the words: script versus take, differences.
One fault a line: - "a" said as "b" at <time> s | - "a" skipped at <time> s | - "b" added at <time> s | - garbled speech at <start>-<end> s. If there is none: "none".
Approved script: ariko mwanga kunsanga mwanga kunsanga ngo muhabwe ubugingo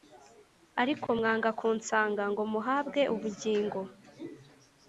- "mwanga kunsanga" skipped at 2.2 s